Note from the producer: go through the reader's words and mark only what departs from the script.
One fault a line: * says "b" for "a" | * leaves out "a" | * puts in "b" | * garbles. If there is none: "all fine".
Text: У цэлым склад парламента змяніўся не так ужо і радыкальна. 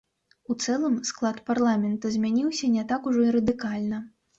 all fine